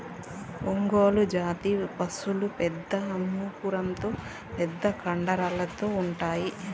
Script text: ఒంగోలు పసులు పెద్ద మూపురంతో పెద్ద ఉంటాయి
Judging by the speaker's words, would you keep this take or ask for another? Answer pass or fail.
fail